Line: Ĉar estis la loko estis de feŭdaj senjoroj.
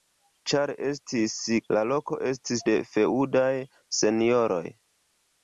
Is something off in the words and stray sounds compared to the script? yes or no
no